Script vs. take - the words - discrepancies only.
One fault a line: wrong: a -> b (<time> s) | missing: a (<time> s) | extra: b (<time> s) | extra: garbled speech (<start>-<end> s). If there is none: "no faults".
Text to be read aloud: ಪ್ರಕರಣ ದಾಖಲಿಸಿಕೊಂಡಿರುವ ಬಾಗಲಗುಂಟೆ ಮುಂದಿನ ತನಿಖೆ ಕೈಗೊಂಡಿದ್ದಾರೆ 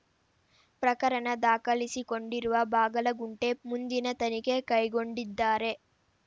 no faults